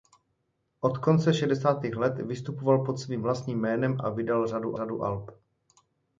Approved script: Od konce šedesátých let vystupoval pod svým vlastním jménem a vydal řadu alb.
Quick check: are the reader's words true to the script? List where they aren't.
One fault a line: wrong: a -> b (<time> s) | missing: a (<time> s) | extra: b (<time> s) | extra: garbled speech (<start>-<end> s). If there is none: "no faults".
extra: řadu (4.7 s)